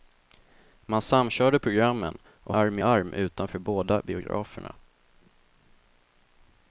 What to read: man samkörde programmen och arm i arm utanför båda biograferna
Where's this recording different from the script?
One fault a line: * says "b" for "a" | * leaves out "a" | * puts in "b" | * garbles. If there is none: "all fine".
all fine